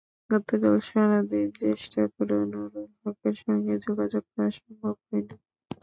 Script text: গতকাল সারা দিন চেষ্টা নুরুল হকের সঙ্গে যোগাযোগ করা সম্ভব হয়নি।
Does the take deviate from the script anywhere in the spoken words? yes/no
yes